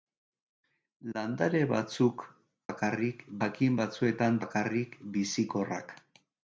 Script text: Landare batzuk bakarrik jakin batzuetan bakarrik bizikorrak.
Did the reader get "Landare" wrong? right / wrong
right